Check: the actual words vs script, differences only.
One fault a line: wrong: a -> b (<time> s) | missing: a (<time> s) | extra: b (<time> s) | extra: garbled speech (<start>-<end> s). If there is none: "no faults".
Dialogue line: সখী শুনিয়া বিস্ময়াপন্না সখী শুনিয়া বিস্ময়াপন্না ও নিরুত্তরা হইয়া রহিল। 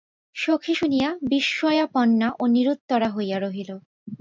missing: সখী শুনিয়া বিস্ময়াপন্না (2.3 s)